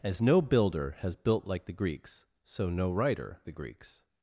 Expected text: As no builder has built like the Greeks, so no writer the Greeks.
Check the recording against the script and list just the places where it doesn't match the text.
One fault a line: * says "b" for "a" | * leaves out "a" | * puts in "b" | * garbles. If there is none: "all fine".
all fine